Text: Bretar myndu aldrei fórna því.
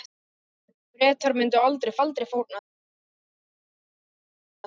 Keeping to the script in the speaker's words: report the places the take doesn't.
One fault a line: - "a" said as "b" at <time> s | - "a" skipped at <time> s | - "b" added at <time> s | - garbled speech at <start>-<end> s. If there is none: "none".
- "aldrei" added at 2.0 s